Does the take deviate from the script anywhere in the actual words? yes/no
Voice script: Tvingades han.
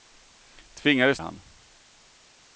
no